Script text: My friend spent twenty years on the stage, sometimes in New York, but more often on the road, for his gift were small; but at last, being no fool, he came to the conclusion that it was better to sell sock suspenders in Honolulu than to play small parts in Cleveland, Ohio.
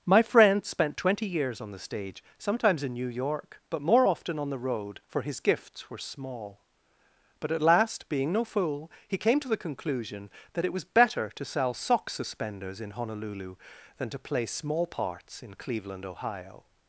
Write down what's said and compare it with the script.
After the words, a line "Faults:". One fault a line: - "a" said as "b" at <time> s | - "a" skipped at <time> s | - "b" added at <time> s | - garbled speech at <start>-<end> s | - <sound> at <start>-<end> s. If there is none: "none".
My friend spent twenty years on the stage, sometimes in New York, but more often on the road, for his gifts were small; but at last, being no fool, he came to the conclusion that it was better to sell sock suspenders in Honolulu than to play small parts in Cleveland, Ohio.
Faults:
- "gift" said as "gifts" at 5.4 s